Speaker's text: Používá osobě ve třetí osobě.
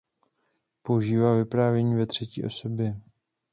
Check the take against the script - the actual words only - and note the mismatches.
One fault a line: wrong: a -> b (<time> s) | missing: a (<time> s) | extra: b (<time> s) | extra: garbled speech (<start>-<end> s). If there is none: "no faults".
wrong: osobě -> vyprávění (1.4 s)